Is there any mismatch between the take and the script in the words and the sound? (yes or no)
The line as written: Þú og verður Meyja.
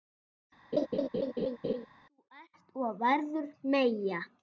yes